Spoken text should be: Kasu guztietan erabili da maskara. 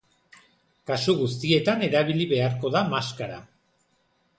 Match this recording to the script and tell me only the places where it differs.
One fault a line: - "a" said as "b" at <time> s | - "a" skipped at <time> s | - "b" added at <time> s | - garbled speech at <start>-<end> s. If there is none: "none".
- "beharko" added at 2.4 s